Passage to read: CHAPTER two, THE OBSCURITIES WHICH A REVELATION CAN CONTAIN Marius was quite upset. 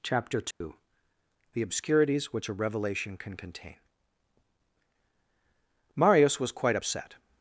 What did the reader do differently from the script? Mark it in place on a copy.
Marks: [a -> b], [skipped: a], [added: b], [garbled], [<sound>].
CHAPTER two, [dropout] THE OBSCURITIES WHICH A REVELATION CAN CONTAIN Marius was quite upset.